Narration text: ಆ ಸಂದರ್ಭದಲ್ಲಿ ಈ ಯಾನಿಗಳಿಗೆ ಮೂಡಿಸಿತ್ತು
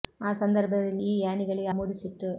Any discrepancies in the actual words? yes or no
no